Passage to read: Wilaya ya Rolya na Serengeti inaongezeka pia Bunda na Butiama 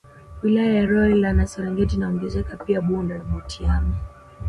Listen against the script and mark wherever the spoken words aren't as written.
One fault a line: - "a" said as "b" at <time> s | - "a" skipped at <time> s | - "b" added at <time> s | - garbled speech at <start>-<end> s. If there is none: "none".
none